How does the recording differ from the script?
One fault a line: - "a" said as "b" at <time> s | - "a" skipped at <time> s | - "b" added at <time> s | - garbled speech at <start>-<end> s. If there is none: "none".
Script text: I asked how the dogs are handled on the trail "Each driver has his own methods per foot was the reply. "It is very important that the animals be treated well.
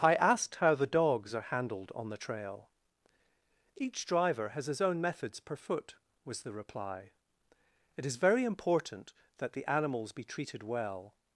none